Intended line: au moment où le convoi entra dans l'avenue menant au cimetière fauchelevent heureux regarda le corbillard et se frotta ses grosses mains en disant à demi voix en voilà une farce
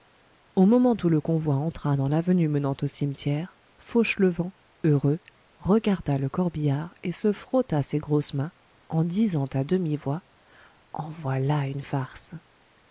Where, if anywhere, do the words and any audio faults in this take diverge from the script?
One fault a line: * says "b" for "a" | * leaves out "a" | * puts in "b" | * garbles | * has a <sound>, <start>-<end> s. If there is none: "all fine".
all fine